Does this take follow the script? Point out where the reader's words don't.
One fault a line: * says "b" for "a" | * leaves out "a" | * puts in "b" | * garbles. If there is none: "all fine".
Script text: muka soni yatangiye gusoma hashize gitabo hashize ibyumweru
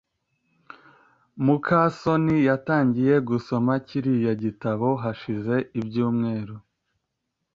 * says "kiriya" for "hashize"